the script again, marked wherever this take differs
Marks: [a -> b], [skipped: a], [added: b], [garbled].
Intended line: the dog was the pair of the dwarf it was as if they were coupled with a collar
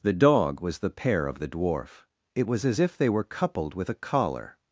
the dog was the pair of the dwarf it was as if they were coupled with a collar